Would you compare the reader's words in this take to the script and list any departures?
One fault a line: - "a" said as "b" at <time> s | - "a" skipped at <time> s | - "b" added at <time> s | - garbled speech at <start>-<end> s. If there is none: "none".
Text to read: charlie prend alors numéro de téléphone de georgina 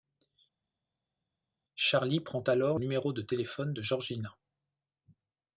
none